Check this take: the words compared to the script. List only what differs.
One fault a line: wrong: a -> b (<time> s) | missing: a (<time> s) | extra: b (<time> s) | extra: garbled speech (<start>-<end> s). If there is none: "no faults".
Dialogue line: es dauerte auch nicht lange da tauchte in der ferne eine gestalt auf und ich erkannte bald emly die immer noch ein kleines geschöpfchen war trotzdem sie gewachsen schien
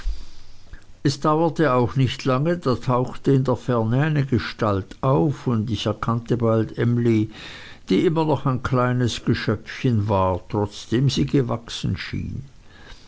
no faults